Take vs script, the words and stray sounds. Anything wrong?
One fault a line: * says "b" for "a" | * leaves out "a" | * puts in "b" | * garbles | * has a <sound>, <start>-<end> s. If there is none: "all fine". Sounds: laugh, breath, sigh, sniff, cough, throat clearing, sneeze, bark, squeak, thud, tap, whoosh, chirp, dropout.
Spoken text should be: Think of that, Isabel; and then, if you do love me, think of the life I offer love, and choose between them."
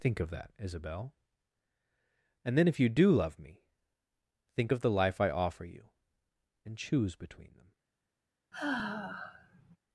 * says "you" for "love"
* has a sigh, 8.5-9.8 s